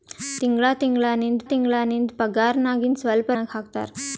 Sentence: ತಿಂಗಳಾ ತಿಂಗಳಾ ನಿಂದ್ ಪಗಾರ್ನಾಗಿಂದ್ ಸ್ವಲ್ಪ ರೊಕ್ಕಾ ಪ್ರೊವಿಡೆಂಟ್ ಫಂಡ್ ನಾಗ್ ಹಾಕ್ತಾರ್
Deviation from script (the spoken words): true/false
true